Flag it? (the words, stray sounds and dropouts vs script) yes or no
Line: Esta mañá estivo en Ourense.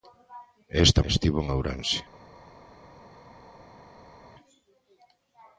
yes